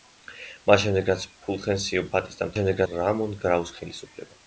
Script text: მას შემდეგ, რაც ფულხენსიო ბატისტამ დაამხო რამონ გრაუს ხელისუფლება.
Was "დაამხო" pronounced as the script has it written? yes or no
no